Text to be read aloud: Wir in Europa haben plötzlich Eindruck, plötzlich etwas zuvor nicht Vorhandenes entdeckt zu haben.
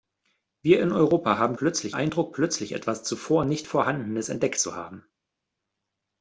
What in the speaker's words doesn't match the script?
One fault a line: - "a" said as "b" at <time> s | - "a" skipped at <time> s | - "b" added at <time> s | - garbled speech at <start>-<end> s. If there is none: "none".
none